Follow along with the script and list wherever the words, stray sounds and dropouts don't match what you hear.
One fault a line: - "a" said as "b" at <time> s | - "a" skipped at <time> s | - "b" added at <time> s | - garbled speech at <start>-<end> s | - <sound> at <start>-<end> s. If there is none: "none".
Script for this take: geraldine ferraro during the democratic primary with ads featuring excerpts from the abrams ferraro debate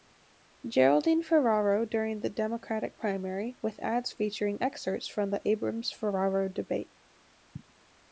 none